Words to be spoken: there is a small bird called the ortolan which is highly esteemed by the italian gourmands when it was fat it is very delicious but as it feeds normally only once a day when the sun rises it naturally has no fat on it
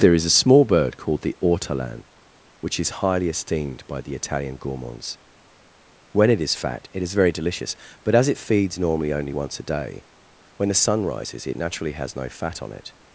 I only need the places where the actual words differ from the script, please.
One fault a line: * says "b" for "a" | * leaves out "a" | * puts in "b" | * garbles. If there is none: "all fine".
* says "is" for "was"